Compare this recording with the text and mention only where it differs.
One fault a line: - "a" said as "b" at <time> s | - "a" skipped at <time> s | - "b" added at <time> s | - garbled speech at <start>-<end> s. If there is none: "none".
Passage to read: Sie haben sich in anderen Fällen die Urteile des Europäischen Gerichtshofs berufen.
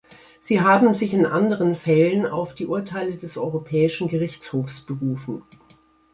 - "auf" added at 2.3 s